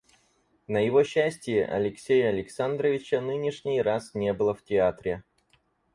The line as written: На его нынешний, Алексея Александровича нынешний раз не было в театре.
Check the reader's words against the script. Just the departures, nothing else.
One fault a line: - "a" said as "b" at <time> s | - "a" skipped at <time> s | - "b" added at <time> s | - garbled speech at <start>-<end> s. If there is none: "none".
- "нынешний" said as "счастие" at 1.0 s